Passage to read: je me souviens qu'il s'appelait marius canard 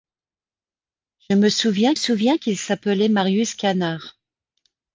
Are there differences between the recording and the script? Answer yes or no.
yes